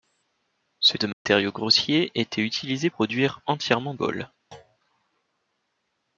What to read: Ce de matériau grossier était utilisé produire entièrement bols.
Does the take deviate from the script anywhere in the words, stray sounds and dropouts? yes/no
yes